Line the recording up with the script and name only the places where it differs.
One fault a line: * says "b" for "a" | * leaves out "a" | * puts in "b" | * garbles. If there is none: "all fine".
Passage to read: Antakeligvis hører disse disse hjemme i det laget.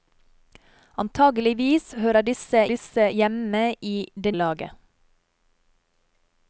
all fine